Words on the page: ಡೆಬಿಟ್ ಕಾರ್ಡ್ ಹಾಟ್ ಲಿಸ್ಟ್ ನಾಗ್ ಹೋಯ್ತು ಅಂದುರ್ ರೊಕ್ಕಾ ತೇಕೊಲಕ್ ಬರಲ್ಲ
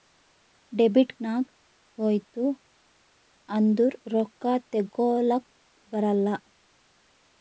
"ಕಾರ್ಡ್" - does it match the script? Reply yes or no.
no